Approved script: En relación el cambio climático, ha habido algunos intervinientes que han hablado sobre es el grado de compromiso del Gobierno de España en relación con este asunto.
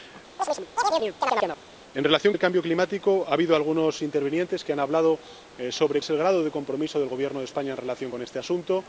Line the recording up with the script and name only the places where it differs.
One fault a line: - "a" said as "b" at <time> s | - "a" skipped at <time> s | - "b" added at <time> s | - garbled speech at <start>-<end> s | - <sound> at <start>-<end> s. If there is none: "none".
- chirp at 0.4-1.6 s